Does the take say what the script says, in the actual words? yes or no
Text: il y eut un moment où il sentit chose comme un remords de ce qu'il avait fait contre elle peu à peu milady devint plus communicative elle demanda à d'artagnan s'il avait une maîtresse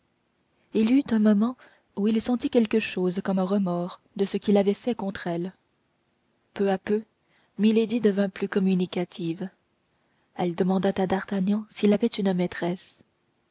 no